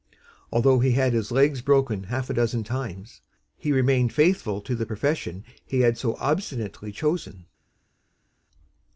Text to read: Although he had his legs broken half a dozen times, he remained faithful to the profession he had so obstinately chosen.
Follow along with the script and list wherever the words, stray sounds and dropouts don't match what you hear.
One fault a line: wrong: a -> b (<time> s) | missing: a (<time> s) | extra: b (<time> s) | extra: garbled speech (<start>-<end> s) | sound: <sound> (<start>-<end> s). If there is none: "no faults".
no faults